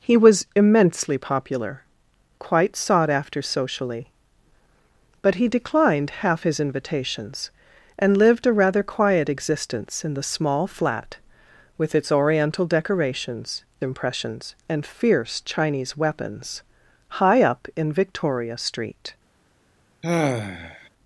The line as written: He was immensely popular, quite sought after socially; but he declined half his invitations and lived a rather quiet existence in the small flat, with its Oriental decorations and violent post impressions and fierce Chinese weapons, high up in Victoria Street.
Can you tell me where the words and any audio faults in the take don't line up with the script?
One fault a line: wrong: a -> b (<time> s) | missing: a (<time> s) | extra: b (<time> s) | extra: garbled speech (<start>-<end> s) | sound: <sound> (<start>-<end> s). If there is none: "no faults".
missing: and violent post (13.7 s)
sound: sigh (20.0-20.9 s)